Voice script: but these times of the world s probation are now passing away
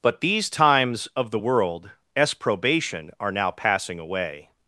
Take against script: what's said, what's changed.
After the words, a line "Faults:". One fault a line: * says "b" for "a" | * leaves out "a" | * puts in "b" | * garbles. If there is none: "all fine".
but these times of the world s probation are now passing away
Faults:
all fine